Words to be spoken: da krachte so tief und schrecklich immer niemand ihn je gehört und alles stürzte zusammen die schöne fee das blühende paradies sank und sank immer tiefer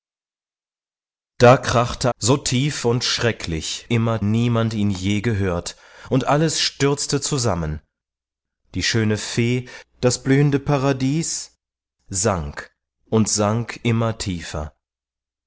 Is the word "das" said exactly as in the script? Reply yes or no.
yes